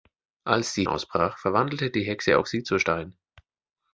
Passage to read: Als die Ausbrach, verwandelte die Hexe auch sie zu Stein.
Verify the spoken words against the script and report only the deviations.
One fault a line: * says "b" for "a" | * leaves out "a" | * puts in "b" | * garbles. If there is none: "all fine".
all fine